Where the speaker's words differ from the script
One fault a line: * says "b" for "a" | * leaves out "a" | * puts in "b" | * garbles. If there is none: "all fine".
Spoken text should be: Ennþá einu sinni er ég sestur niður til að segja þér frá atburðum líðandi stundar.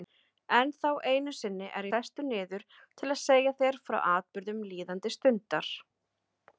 * leaves out "ég"